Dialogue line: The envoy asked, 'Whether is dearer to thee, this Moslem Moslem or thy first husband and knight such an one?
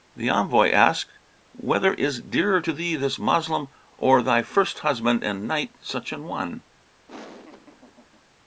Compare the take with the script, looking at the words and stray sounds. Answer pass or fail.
fail